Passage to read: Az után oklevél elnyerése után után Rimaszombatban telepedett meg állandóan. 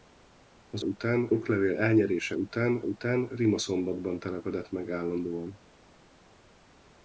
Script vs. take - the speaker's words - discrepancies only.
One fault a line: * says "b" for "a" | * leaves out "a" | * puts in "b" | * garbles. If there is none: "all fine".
all fine